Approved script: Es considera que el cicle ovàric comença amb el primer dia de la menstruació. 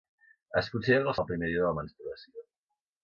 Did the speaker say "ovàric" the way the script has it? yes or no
no